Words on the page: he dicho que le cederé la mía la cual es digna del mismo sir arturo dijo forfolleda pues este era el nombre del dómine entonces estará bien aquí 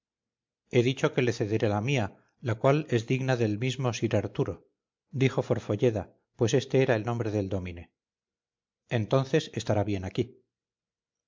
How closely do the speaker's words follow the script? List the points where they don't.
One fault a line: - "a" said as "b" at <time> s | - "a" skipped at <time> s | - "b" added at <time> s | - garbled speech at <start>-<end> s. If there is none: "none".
none